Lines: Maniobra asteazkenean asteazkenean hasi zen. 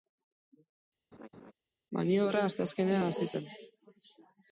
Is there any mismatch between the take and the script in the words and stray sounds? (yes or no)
yes